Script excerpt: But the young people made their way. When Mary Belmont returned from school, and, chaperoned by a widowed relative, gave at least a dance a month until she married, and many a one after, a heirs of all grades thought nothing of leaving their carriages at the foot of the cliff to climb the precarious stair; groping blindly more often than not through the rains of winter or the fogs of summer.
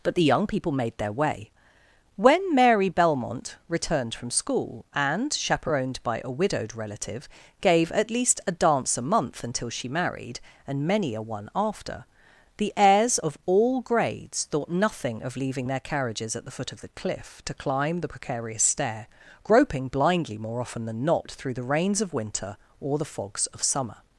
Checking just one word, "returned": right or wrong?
right